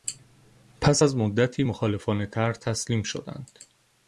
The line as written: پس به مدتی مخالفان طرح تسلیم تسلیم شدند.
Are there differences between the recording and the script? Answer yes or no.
yes